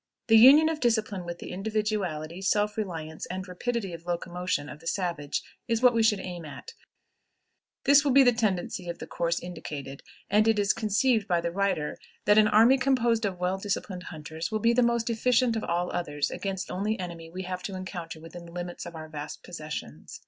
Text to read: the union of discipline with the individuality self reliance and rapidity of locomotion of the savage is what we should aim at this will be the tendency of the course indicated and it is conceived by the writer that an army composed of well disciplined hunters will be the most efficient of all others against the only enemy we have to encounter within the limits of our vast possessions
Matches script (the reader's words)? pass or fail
fail